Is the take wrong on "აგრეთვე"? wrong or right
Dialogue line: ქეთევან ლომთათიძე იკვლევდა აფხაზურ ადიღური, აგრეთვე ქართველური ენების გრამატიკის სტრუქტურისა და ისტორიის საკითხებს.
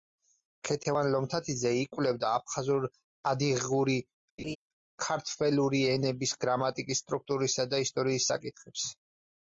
wrong